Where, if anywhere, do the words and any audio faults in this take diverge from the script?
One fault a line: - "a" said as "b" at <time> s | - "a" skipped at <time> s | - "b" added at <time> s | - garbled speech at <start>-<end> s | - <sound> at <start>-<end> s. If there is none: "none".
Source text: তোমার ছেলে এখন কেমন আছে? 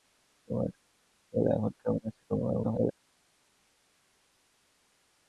- garbled speech at 2.3-2.9 s